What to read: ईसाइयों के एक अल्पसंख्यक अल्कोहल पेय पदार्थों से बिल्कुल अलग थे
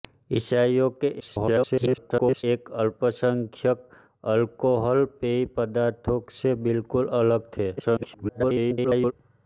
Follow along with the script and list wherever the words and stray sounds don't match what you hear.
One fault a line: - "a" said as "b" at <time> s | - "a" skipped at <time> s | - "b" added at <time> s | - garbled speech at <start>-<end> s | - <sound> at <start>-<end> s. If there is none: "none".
- garbled speech at 1.2-2.4 s
- garbled speech at 7.8-9.1 s